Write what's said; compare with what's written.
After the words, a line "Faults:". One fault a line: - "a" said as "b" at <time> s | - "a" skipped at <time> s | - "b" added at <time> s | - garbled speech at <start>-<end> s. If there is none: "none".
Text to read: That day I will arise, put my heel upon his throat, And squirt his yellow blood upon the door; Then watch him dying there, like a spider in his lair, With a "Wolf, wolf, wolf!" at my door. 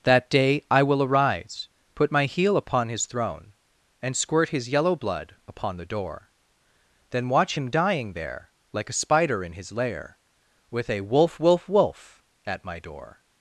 That day I will arise, put my heel upon his throne, And squirt his yellow blood upon the door; Then watch him dying there, like a spider in his lair, With a "Wolf, wolf, wolf!" at my door.
Faults:
- "throat" said as "throne" at 3.1 s